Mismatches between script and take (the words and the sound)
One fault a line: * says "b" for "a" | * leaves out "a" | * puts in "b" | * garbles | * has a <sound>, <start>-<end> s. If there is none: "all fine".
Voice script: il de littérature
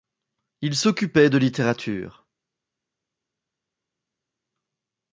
* puts in "s'occupait"